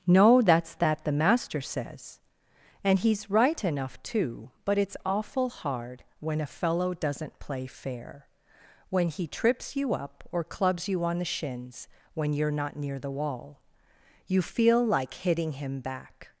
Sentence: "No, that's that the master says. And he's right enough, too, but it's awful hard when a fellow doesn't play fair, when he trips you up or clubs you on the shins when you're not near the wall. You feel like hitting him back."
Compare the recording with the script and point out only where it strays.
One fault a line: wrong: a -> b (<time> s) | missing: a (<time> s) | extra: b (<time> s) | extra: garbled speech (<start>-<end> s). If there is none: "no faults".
no faults